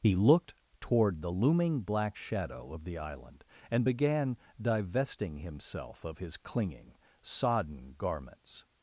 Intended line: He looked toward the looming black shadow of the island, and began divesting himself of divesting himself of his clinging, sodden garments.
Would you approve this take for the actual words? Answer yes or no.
no